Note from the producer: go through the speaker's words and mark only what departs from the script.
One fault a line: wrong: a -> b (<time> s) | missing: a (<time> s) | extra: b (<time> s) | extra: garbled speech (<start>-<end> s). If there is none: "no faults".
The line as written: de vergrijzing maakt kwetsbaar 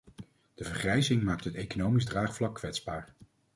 extra: het economisch draagvlak (1.4 s)